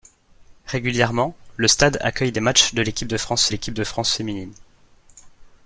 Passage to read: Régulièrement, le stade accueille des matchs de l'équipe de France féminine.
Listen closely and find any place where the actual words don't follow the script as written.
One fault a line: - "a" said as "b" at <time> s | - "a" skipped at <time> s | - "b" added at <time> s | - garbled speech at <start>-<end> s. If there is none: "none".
- "l'équipe de France" added at 3.5 s